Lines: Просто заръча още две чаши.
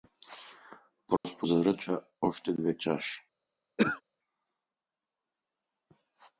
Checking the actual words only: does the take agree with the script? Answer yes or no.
yes